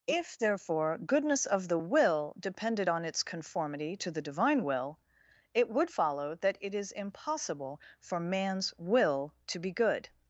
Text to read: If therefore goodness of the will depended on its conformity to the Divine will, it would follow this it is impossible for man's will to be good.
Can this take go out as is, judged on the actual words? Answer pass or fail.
fail